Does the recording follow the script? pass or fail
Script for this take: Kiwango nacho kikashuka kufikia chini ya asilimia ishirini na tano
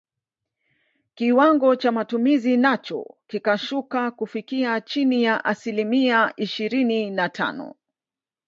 fail